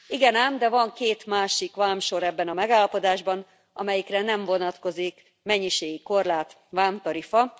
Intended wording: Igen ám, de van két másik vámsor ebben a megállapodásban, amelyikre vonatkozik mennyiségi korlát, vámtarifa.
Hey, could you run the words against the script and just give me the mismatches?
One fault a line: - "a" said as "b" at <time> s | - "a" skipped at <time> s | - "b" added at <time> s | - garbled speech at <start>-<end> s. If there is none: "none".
- "nem" added at 4.2 s